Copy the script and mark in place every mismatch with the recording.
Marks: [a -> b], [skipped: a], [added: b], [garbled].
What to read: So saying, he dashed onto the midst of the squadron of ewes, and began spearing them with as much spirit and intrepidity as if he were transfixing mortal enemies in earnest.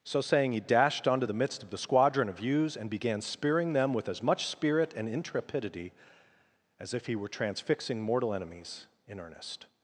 So saying, he dashed onto the midst of the squadron of ewes, and began spearing them with as much spirit and intrepidity as if he were transfixing mortal enemies in earnest.